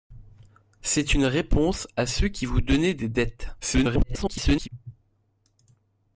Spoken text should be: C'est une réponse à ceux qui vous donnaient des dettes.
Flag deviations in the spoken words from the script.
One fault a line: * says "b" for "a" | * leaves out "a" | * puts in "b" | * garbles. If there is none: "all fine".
* garbles